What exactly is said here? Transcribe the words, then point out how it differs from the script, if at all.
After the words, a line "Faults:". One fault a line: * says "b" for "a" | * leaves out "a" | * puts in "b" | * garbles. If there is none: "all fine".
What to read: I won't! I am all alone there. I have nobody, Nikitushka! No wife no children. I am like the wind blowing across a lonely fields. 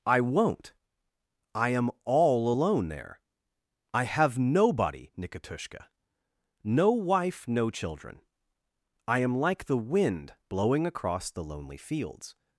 I won't! I am all alone there. I have nobody, Nikitushka! No wife no children. I am like the wind blowing across the lonely fields.
Faults:
* says "the" for "a"